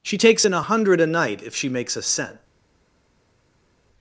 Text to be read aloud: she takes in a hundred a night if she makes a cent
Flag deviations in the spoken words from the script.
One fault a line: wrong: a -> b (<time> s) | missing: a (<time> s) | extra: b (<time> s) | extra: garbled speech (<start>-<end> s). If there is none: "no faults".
no faults